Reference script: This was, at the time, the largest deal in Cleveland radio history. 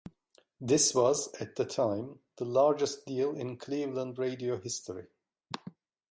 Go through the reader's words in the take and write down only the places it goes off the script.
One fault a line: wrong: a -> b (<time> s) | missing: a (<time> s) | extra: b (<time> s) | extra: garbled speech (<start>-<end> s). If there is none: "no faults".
no faults